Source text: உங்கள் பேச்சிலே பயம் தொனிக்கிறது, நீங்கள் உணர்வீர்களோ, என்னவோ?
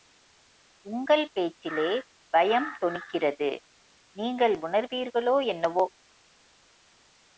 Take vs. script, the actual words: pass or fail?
pass